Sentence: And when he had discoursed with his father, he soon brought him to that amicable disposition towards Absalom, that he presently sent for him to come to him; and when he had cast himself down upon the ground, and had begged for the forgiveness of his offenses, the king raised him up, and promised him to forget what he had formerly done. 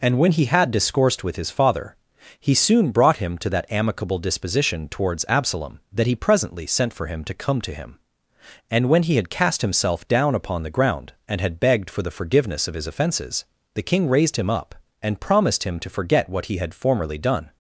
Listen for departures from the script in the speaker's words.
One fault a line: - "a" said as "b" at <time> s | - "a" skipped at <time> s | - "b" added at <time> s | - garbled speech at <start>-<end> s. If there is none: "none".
none